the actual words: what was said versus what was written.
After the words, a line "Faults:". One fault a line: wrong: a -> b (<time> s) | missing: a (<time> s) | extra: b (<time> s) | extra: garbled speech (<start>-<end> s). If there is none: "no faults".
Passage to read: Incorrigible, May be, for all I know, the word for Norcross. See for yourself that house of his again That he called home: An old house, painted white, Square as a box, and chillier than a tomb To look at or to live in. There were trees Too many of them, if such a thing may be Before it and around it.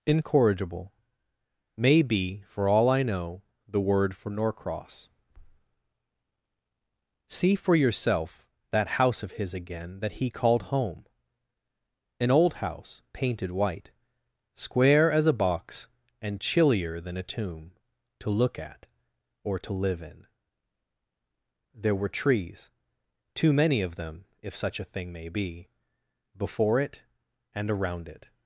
Incorrigible, May be, for all I know, the word for Norcross. See for yourself that house of his again That he called home: An old house, painted white, Square as a box, and chillier than a tomb To look at or to live in. There were trees Too many of them, if such a thing may be Before it and around it.
Faults:
no faults